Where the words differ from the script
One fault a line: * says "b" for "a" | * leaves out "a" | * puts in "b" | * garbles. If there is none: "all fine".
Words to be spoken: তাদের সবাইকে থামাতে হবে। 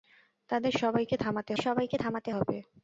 * puts in "সবাইকে থামাতে"